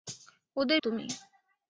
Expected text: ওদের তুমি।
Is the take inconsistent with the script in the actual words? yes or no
no